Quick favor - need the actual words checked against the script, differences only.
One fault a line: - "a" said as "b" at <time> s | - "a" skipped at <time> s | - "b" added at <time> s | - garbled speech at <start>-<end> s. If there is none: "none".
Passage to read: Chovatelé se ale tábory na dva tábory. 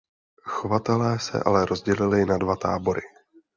- "tábory" said as "rozdělili" at 1.6 s